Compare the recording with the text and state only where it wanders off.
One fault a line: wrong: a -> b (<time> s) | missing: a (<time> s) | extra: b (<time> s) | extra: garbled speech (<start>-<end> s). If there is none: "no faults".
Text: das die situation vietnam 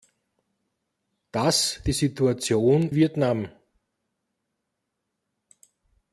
no faults